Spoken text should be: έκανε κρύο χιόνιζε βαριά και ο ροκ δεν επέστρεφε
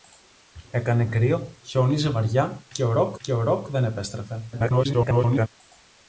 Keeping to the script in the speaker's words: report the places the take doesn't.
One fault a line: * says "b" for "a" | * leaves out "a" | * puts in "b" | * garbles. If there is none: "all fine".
* puts in "και ο ροκ"
* garbles